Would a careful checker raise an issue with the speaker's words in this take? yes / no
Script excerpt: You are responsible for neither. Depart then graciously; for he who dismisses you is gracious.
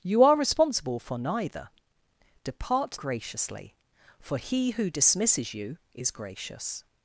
yes